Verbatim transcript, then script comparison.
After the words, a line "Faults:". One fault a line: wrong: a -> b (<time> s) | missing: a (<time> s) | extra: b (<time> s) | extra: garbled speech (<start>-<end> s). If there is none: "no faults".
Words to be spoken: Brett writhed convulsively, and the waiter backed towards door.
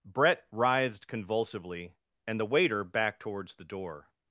Brett writhed convulsively, and the waiter backed towards the door.
Faults:
extra: the (3.5 s)